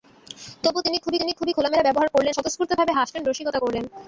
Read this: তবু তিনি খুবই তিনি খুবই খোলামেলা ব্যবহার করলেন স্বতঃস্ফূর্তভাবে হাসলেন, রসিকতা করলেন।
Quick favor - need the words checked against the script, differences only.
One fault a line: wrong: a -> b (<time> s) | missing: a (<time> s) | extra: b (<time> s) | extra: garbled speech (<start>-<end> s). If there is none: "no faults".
no faults